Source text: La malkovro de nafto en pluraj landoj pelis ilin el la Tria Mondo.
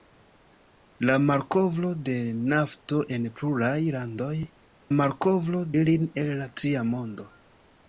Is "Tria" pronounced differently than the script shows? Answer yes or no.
no